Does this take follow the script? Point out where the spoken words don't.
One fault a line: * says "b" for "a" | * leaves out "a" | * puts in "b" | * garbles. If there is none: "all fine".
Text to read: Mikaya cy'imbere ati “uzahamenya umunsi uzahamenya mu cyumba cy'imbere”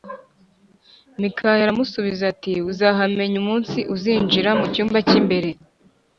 * says "aramusubiza" for "cy'imbere"
* says "uzinjira" for "uzahamenya"